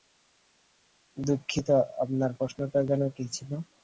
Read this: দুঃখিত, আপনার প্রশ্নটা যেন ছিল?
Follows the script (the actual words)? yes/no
no